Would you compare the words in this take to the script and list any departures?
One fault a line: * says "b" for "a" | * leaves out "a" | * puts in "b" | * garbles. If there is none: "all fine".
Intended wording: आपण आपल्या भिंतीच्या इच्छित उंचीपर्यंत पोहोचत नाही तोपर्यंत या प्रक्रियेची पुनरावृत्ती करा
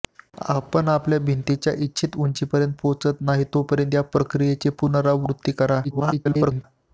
* garbles